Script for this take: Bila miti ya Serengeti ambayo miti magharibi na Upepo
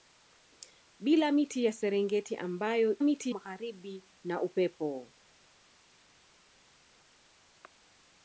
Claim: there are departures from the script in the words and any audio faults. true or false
false